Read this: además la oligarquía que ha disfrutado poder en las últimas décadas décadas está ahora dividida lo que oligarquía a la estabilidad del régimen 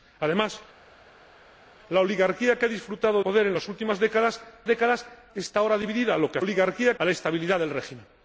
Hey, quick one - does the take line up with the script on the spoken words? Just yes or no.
yes